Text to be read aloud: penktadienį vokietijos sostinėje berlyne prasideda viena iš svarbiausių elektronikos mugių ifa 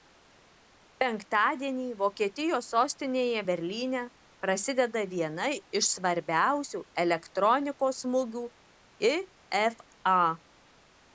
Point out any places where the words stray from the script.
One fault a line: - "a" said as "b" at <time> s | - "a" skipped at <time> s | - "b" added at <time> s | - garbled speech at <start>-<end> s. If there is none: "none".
none